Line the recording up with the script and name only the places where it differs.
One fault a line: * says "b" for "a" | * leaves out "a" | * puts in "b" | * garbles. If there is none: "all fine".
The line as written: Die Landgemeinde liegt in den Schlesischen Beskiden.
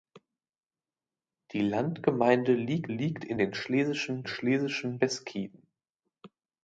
* puts in "liegt"
* puts in "Schlesischen"